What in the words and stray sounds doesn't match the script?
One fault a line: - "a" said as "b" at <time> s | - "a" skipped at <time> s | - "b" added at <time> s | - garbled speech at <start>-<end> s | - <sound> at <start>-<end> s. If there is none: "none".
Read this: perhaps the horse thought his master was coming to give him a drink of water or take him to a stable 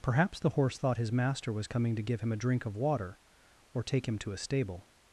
none